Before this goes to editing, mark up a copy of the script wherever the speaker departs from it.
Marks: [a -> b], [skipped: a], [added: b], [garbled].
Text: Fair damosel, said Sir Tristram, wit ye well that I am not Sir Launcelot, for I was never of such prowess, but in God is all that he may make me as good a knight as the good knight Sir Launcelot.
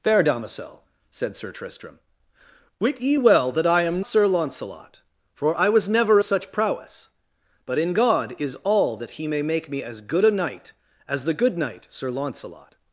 Fair damosel, said Sir Tristram, wit ye well that I am [skipped: not] Sir Launcelot, for I was never [skipped: of] such prowess, but in God is all that he may make me as good a knight as the good knight Sir Launcelot.